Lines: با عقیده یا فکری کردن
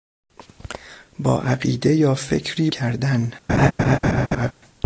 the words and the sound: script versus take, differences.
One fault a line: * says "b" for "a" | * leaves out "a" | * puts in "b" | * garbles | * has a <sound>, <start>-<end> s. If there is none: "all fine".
* has a laugh, 3.5-4.5 s